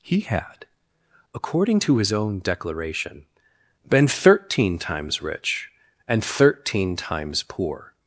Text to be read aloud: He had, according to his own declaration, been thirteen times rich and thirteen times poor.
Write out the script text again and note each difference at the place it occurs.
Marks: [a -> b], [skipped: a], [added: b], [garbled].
He had, according to his own declaration, been thirteen times rich and thirteen times poor.